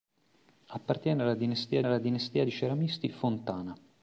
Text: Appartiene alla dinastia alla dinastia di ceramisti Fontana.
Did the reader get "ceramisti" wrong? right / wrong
right